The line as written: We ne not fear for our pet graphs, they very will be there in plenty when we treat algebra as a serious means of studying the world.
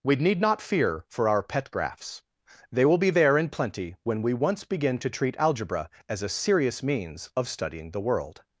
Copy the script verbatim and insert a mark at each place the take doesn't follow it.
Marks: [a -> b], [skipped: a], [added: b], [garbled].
We [ne -> need] not fear for our pet graphs, they [skipped: very] will be there in plenty when we [added: once begin to] treat algebra as a serious means of studying the world.